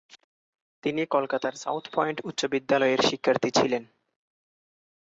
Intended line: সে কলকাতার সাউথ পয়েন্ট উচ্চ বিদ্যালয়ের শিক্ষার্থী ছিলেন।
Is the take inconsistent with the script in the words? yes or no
yes